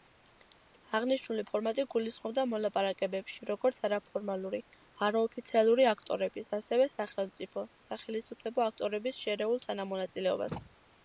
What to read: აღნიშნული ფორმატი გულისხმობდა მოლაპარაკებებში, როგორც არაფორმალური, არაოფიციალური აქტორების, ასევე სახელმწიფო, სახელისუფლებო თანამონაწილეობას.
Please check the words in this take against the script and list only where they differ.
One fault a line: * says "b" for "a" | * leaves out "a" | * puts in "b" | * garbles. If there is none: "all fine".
* puts in "აქტორების შერეულ"